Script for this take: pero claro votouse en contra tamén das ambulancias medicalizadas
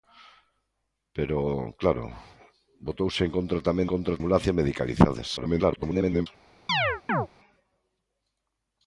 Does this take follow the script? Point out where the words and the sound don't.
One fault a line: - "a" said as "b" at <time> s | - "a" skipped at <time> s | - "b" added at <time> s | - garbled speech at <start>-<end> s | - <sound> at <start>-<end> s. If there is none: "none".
- "das" said as "contra" at 3.9 s
- garbled speech at 5.4-6.3 s
- chirp at 6.7-7.3 s